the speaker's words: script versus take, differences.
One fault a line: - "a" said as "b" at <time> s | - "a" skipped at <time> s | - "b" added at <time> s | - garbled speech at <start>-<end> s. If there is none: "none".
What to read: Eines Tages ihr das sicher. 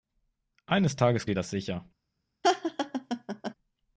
none